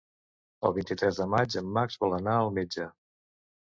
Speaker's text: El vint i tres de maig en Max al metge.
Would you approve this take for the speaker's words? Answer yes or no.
no